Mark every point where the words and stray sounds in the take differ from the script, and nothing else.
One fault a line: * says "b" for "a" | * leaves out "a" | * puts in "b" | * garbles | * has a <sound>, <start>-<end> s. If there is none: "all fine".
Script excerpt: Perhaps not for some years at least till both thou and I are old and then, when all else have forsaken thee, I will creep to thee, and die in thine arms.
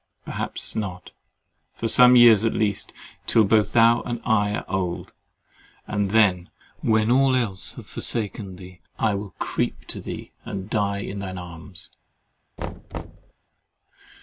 * has a thud, 12.6-13.3 s